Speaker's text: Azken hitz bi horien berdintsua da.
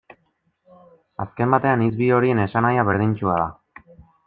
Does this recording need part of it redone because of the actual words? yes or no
yes